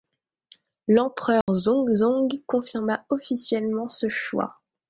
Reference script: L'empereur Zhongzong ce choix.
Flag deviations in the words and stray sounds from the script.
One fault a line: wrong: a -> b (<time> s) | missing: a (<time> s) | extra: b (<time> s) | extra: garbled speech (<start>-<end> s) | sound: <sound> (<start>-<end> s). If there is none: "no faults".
sound: dropout (1.4-1.5 s)
extra: confirma officiellement (2.5 s)